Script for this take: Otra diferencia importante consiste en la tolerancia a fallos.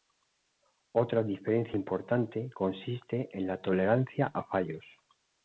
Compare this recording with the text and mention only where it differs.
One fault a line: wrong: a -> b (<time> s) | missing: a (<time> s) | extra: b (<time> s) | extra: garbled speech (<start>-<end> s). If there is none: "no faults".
no faults